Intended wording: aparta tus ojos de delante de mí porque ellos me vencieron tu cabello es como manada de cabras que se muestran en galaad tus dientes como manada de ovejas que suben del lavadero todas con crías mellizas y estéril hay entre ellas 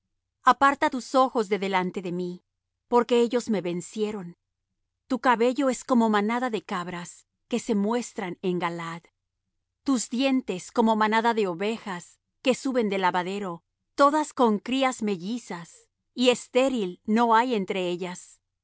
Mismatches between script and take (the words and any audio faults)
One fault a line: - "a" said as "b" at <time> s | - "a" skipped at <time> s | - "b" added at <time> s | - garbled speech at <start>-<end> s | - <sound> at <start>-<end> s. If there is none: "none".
- "no" added at 17.0 s